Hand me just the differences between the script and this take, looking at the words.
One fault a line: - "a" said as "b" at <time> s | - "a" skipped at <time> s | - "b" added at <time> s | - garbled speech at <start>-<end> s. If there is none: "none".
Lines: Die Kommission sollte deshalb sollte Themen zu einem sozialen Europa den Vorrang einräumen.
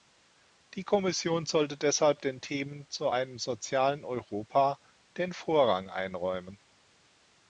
- "sollte" said as "den" at 2.2 s